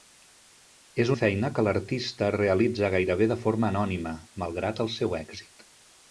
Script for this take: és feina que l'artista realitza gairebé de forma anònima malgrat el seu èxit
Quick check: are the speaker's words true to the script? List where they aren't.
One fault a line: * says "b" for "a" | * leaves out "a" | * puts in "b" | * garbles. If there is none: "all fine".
all fine